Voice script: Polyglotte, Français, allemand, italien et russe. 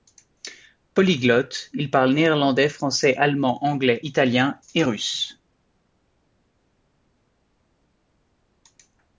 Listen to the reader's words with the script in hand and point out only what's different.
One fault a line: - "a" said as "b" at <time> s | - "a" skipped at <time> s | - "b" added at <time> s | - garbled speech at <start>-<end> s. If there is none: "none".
- "Il parle néerlandais" added at 1.7 s
- "anglais" added at 3.6 s